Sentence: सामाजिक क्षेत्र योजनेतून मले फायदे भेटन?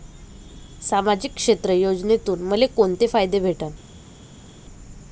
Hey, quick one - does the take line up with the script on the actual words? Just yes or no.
no